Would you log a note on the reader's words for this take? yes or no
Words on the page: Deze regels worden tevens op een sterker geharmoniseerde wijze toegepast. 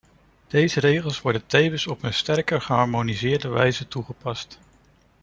no